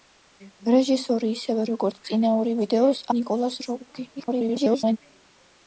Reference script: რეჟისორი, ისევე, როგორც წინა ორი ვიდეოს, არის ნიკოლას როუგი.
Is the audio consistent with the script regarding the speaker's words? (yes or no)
no